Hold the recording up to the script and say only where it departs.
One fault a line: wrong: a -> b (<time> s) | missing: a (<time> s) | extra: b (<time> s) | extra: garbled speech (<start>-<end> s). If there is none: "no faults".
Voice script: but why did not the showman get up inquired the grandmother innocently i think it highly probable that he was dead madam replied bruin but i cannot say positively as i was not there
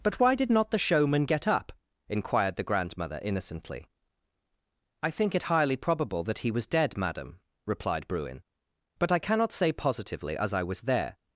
missing: not (10.8 s)